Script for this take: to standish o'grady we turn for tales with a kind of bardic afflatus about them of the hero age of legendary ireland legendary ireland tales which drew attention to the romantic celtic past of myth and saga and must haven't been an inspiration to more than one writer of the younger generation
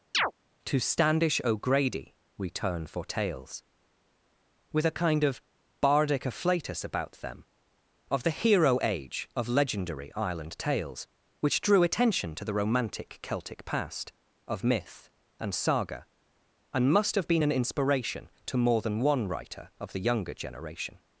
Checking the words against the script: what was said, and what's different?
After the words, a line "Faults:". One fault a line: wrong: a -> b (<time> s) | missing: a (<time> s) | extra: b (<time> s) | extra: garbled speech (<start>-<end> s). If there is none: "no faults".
to standish o'grady we turn for tales with a kind of bardic afflatus about them of the hero age of legendary ireland tales which drew attention to the romantic celtic past of myth and saga and must have been an inspiration to more than one writer of the younger generation
Faults:
missing: legendary ireland (10.6 s)
wrong: haven't -> have (17.1 s)